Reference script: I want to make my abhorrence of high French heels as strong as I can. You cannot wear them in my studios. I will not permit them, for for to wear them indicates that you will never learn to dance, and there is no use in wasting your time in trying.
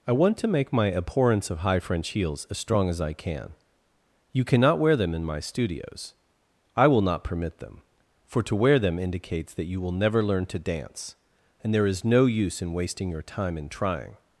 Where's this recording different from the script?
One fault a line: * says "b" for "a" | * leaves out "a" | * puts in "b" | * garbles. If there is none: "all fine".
* leaves out "for"